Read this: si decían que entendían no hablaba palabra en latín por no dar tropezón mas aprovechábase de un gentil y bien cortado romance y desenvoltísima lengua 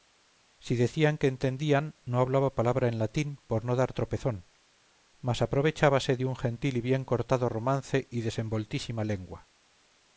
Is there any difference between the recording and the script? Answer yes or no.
no